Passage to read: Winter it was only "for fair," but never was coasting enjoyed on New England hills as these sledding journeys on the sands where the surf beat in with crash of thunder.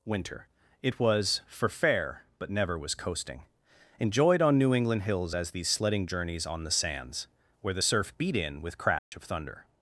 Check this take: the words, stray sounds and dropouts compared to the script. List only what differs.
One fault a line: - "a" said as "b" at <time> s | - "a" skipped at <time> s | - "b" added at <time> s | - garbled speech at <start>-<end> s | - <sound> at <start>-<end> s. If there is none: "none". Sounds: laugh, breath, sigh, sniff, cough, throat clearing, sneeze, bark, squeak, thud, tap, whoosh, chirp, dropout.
- "only" skipped at 1.4 s
- dropout at 9.0-9.1 s